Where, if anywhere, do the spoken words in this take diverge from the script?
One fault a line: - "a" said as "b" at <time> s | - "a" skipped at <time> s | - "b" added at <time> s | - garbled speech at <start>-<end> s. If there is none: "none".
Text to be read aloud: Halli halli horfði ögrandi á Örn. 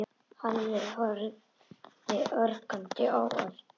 - "halli" skipped at 0.8 s